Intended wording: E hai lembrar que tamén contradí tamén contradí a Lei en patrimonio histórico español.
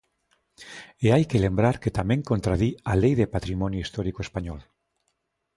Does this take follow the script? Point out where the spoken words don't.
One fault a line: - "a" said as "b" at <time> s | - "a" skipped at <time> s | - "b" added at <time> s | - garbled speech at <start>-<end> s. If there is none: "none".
- "que" added at 1.3 s
- "tamén contradí" skipped at 2.7 s
- "en" said as "de" at 3.2 s